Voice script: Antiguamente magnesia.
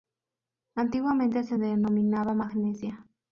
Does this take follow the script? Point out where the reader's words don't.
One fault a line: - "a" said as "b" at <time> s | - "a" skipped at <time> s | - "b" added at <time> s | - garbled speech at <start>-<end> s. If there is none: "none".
- "se denominaba" added at 1.4 s